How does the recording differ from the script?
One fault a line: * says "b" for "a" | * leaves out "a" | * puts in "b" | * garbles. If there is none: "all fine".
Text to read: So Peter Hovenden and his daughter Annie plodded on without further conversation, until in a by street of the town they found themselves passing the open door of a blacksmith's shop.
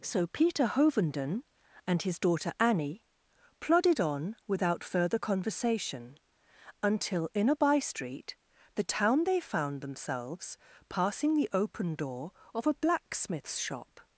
* leaves out "of"